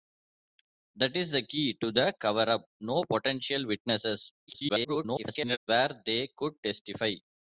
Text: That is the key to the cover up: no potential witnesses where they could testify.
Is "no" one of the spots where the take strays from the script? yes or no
no